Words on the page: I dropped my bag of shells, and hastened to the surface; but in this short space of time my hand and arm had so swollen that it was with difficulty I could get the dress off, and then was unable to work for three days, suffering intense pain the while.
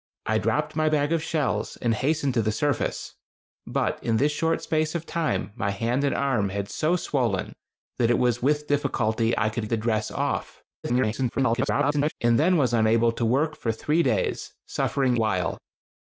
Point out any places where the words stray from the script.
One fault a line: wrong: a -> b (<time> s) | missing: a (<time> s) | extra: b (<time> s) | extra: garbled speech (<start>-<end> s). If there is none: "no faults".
missing: get (9.7 s)
extra: garbled speech (10.8-12.1 s)
missing: intense pain the (15.2 s)